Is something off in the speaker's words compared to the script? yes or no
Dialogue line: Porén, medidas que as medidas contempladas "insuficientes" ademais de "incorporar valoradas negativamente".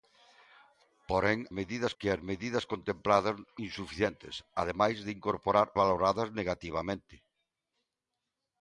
no